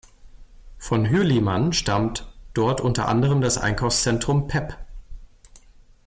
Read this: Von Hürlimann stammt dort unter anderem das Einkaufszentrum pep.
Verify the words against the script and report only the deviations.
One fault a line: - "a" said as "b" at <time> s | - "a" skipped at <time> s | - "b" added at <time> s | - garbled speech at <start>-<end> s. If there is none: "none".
none